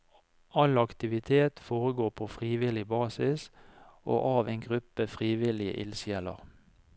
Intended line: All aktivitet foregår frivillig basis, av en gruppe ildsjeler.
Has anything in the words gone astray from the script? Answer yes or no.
yes